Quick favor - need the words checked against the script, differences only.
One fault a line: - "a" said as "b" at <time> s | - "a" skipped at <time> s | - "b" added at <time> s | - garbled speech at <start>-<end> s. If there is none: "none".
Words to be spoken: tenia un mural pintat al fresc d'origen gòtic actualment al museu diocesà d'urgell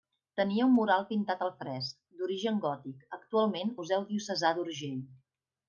- "al" skipped at 3.8 s